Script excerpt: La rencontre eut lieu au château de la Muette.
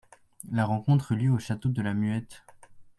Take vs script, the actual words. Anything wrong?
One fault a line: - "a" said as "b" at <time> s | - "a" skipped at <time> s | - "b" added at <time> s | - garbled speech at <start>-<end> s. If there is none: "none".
none